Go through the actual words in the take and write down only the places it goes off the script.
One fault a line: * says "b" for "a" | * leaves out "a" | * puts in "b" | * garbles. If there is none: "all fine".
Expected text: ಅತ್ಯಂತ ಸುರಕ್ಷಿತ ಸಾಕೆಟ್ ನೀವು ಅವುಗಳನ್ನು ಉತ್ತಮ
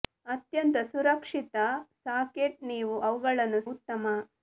all fine